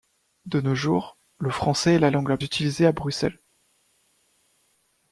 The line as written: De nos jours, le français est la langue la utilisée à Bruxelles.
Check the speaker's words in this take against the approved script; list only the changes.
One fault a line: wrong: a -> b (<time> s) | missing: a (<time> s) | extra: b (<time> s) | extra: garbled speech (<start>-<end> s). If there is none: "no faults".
no faults